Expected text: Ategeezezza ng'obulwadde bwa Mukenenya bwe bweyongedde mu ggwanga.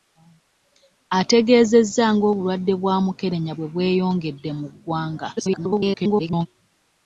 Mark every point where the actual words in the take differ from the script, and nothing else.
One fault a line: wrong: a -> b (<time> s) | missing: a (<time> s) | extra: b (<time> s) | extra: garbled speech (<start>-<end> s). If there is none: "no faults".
extra: garbled speech (5.4-6.5 s)